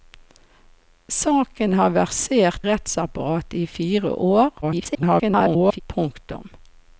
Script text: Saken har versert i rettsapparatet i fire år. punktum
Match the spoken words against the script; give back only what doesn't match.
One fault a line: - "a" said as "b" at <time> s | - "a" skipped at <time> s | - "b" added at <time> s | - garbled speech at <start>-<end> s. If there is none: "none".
- "i" skipped at 2.7 s
- garbled speech at 4.6-5.8 s